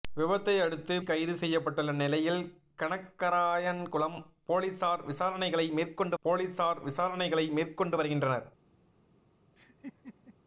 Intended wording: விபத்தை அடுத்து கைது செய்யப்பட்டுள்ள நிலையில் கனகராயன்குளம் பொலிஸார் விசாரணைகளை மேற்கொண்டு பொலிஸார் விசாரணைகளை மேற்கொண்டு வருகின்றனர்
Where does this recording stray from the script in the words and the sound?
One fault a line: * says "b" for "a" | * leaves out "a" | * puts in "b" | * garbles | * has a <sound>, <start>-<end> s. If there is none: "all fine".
* has a laugh, 9.6-10.3 s